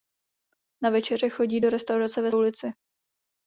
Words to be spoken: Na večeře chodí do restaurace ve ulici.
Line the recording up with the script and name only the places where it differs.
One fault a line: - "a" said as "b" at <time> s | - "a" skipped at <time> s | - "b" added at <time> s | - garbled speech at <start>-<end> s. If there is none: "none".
none